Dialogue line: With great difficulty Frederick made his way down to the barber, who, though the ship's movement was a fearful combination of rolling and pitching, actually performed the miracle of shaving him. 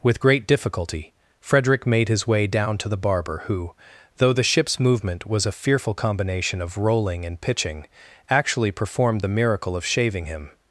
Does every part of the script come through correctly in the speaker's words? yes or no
yes